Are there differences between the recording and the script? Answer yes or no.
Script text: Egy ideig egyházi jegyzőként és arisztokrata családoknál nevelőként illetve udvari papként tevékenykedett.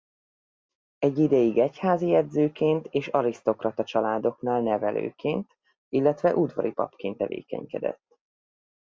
no